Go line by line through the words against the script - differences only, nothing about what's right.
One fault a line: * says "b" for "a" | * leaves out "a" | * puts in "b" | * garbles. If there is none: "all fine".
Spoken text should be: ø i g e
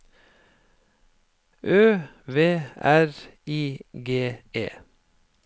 * puts in "v r"